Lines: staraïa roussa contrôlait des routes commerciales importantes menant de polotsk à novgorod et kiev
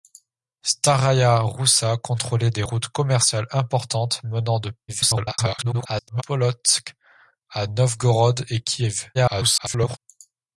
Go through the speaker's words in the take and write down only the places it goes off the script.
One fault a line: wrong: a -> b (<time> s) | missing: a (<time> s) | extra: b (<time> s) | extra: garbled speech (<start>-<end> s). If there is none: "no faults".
extra: garbled speech (4.9-6.2 s)
extra: garbled speech (9.1-10.0 s)